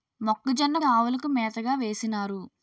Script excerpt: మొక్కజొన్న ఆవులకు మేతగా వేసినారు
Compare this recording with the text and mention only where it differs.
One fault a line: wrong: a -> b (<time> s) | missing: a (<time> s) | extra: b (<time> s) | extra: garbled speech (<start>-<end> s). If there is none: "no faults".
no faults